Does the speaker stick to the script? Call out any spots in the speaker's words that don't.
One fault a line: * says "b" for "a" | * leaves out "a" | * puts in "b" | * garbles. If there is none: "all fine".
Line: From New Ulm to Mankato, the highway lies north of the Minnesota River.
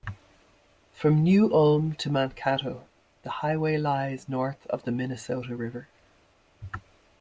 all fine